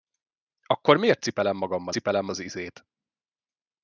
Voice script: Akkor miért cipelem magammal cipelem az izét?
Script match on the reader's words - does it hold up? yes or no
yes